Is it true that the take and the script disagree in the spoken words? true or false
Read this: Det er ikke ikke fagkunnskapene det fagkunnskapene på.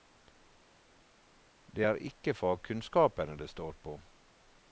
true